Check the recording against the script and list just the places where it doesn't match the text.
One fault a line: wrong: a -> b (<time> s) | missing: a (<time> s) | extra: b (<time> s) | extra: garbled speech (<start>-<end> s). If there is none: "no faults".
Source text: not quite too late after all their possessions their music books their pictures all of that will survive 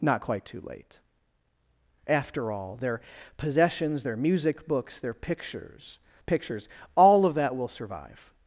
extra: pictures (6.3 s)